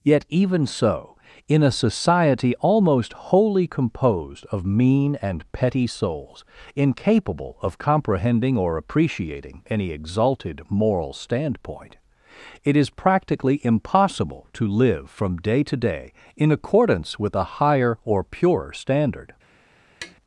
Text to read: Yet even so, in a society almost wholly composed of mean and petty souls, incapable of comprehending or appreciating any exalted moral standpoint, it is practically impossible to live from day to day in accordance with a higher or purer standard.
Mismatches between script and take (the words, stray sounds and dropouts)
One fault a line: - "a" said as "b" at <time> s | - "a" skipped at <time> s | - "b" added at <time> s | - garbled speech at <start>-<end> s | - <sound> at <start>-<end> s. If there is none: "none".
- tap at 20.0-20.2 s